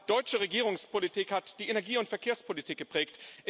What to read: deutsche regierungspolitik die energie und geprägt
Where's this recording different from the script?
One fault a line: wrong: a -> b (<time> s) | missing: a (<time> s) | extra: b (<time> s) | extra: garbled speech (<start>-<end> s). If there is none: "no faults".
extra: hat (1.3 s)
extra: verkehrspolitik (2.1 s)